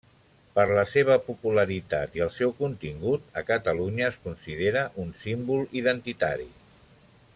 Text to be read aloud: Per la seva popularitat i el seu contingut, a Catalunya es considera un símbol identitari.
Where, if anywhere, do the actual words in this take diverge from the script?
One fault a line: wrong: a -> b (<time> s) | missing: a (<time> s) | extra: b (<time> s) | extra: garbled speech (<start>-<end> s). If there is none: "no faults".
no faults